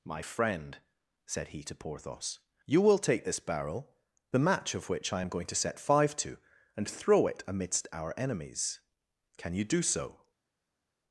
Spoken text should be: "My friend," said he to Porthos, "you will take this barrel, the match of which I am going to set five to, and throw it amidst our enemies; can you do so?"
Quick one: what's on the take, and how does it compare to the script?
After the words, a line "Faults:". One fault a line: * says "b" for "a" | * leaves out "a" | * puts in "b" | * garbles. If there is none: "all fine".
"My friend," said he to Porthos, "you will take this barrel, the match of which I am going to set five to, and throw it amidst our enemies; can you do so?"
Faults:
all fine